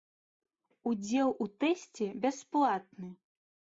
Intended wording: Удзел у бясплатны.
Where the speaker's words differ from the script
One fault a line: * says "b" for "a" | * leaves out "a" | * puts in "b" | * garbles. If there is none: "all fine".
* puts in "тэсце"